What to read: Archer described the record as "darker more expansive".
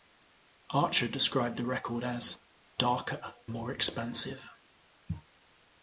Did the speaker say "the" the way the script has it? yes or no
yes